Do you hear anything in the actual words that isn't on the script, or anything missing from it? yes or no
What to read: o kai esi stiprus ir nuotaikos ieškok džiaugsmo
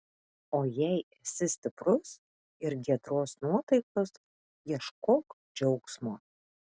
yes